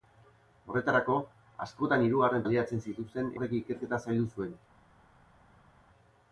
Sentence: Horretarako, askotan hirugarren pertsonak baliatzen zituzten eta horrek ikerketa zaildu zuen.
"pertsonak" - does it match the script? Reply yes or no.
no